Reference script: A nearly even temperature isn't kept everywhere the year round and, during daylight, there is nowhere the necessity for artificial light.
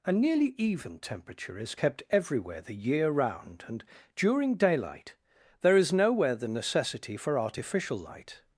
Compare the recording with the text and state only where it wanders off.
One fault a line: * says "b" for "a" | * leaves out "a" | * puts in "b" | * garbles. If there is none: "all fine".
* says "is" for "isn't"